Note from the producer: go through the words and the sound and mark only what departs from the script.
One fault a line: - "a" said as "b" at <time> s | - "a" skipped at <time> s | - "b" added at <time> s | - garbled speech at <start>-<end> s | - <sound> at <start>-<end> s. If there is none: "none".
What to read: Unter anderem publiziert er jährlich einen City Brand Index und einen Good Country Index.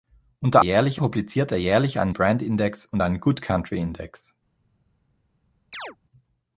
- "anderem" said as "jährlich" at 0.6 s
- "City" skipped at 2.1 s
- chirp at 5.7-6.0 s